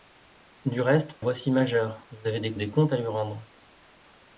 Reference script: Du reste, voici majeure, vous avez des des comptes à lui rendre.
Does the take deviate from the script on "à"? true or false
false